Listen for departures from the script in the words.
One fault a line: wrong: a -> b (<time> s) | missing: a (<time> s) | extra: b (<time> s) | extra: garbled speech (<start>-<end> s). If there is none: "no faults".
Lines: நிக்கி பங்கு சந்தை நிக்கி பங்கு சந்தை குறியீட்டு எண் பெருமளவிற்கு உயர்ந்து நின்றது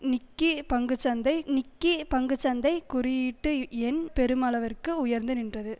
no faults